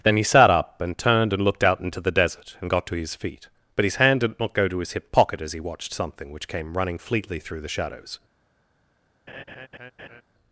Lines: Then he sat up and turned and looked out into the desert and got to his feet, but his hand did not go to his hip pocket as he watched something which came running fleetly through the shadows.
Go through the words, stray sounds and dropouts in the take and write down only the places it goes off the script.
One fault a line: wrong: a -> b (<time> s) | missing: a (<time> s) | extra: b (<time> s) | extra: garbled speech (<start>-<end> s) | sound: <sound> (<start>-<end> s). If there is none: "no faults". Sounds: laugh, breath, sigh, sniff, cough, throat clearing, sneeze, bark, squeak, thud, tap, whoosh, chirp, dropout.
sound: laugh (9.3-10.2 s)